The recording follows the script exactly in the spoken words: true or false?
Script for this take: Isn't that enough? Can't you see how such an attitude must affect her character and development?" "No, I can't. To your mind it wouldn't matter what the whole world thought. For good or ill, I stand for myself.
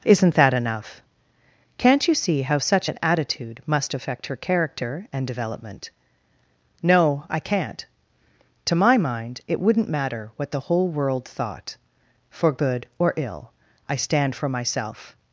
false